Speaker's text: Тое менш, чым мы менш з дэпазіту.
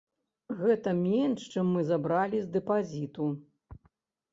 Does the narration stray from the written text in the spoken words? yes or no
yes